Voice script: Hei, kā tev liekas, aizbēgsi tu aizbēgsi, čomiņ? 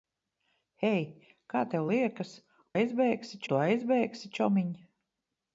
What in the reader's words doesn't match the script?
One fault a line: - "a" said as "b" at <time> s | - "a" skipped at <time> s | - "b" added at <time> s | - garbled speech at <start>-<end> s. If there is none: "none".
none